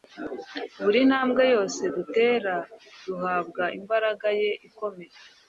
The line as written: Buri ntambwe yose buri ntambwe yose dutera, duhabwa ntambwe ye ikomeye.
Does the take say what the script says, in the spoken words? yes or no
no